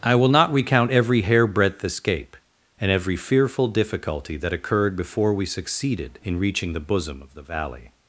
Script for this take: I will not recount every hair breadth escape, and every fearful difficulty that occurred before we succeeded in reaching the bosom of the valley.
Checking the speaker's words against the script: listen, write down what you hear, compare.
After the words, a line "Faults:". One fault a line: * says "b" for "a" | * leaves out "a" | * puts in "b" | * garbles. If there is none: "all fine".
I will not recount every hair breadth escape, and every fearful difficulty that occurred before we succeeded in reaching the bosom of the valley.
Faults:
all fine